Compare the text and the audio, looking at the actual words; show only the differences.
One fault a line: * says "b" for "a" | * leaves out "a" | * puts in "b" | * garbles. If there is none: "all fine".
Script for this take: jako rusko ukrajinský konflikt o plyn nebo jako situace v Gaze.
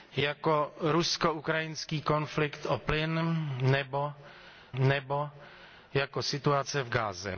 * puts in "nebo"